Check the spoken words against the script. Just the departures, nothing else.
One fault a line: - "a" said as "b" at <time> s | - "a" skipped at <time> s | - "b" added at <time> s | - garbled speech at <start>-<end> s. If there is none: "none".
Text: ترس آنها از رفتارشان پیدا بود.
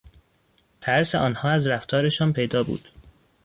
none